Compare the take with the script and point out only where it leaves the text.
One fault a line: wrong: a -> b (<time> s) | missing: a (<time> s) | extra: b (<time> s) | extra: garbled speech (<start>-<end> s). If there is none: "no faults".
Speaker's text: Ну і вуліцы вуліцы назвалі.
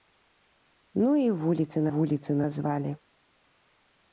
no faults